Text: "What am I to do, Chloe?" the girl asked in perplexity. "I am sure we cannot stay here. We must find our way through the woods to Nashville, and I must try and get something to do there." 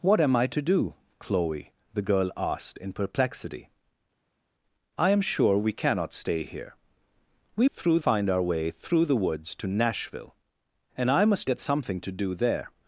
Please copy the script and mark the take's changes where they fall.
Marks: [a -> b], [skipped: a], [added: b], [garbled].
"What am I to do, Chloe?" the girl asked in perplexity. "I am sure we cannot stay here. We [must -> through] find our way through the woods to Nashville, and I must [skipped: try and] get something to do there."